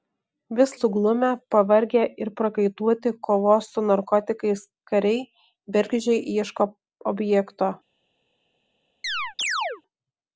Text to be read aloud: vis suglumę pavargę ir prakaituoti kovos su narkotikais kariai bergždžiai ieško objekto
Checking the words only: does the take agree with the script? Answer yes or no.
yes